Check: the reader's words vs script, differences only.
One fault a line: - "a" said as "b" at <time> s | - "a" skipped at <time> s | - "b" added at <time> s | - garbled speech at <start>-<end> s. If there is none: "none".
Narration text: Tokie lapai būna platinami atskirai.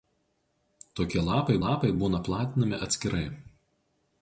- "lapai" added at 1.6 s